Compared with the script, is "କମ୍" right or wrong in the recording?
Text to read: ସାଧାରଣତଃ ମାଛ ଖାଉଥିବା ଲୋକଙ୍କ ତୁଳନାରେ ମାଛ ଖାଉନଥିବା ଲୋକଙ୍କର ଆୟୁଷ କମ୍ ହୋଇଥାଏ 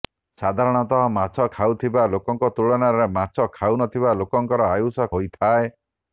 wrong